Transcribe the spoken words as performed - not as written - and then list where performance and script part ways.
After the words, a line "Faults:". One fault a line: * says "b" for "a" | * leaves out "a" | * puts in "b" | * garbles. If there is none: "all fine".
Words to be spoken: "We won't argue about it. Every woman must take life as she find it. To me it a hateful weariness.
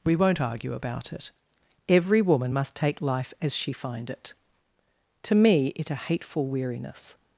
"We won't argue about it. Every woman must take life as she find it. To me it a hateful weariness.
Faults:
all fine